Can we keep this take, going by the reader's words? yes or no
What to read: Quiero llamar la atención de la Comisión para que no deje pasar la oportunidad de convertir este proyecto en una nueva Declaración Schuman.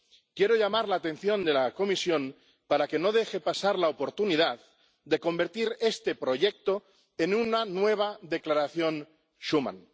yes